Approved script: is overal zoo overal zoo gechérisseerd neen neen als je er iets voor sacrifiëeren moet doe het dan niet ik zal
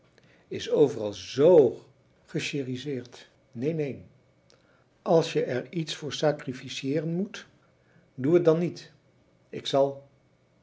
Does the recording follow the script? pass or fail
fail